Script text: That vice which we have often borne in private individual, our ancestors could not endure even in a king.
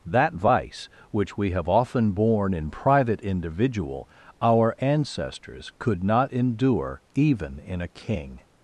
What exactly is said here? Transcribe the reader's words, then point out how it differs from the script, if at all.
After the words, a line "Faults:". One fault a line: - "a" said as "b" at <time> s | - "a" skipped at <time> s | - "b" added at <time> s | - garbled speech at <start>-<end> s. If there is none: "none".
That vice which we have often borne in private individual, our ancestors could not endure even in a king.
Faults:
none